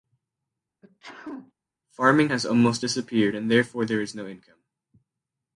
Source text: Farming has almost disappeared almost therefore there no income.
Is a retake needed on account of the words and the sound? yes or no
yes